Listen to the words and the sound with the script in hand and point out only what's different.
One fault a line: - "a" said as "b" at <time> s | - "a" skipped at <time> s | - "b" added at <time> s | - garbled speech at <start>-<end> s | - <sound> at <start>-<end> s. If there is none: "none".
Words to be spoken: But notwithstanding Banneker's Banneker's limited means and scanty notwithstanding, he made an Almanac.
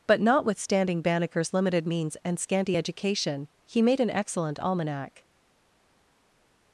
- "Banneker's" skipped at 1.5 s
- "notwithstanding" said as "education" at 2.8 s
- "excellent" added at 4.1 s